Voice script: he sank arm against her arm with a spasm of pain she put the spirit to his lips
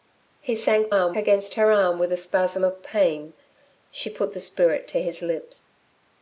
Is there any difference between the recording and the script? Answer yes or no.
no